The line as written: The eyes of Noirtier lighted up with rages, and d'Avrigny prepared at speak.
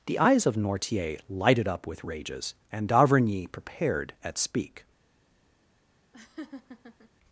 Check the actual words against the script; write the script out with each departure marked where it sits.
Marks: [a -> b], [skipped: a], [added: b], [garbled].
The eyes of Noirtier lighted up with rages, and d'Avrigny prepared at speak.